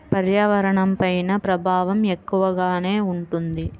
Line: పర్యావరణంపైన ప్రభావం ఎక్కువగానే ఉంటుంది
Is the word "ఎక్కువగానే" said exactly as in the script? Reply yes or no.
yes